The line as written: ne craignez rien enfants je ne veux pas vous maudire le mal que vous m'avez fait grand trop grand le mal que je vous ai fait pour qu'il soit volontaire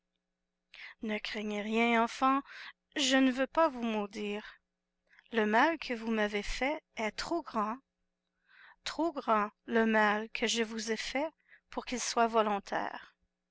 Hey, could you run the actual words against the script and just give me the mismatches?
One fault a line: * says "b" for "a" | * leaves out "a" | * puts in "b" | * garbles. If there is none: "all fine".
* puts in "est trop"